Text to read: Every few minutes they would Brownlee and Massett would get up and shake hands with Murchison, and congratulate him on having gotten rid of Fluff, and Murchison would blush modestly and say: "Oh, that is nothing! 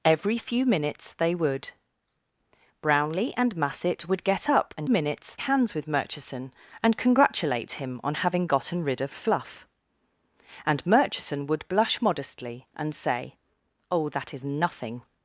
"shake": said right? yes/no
no